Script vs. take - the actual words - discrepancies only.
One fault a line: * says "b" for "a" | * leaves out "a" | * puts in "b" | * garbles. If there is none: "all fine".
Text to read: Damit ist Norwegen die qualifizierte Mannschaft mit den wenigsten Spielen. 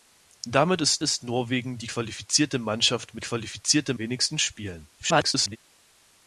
* puts in "ist"
* says "qualifizierte" for "den"
* garbles